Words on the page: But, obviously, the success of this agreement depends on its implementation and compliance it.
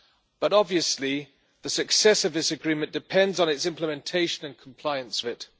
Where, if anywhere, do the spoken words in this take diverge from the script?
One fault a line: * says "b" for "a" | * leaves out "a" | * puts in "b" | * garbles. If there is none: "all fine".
all fine